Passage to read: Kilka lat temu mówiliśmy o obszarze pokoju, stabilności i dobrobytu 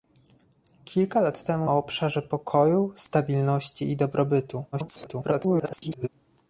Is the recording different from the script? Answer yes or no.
yes